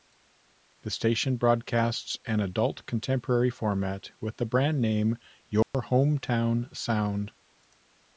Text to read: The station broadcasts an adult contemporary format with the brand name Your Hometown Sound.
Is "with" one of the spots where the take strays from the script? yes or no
no